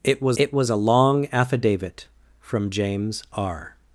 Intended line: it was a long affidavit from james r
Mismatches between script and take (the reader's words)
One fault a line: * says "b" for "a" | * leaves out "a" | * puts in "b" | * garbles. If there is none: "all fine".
* puts in "it was"